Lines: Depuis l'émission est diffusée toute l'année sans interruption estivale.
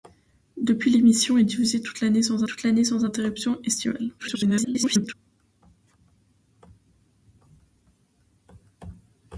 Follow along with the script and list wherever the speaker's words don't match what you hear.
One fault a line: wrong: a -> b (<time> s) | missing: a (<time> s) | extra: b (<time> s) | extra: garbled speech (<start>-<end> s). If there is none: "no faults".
extra: toute l'année sans (2.4 s)
extra: garbled speech (4.2-5.1 s)